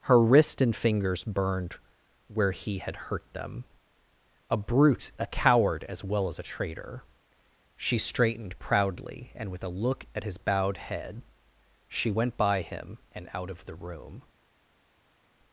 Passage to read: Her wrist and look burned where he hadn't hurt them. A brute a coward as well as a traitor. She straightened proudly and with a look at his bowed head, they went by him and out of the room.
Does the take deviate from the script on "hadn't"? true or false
true